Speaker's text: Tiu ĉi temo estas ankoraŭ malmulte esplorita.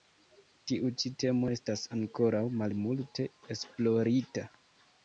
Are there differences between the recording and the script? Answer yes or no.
no